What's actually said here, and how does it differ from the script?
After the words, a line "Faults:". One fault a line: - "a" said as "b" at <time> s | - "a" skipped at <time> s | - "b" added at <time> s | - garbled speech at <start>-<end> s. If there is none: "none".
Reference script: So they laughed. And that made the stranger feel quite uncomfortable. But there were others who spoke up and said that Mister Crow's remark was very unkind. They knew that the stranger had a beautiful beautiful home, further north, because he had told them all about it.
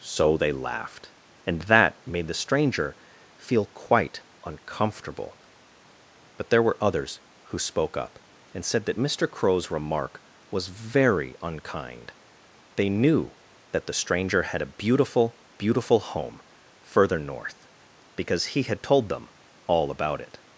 So they laughed. And that made the stranger feel quite uncomfortable. But there were others who spoke up and said that Mister Crow's remark was very unkind. They knew that the stranger had a beautiful beautiful home, further north, because he had told them all about it.
Faults:
none